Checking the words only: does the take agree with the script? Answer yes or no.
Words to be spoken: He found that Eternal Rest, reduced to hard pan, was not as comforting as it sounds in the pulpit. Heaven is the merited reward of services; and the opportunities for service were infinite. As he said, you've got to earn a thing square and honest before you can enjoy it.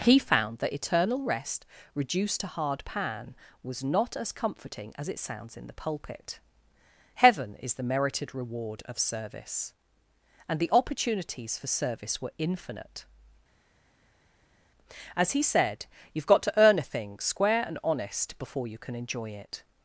no